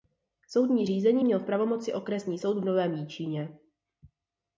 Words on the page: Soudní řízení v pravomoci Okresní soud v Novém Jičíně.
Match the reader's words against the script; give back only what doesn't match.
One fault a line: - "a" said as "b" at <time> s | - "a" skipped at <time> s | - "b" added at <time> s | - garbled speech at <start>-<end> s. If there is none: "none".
- "měl" added at 1.2 s